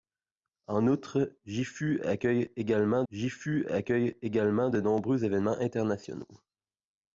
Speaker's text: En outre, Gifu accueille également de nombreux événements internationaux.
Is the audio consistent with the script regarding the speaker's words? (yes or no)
no